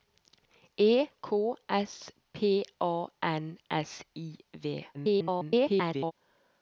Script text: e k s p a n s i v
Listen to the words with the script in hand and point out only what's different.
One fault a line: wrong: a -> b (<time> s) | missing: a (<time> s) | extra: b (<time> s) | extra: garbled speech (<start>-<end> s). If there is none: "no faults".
extra: garbled speech (4.9-6.1 s)